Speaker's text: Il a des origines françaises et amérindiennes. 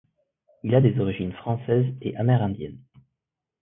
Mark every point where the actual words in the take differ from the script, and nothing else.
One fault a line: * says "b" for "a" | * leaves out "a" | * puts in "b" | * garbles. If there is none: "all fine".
all fine